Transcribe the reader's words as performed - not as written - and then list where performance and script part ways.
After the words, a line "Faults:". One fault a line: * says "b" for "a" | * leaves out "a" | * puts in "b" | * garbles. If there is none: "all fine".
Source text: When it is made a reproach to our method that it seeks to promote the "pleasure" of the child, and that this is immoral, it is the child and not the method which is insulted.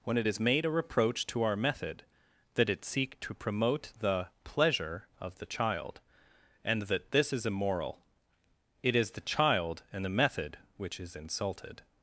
When it is made a reproach to our method that it seek to promote the "pleasure" of the child, and that this is immoral, it is the child and the method which is insulted.
Faults:
* says "seek" for "seeks"
* leaves out "not"